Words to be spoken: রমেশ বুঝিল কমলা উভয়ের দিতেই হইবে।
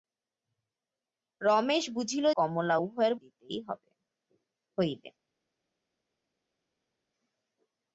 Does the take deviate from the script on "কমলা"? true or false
false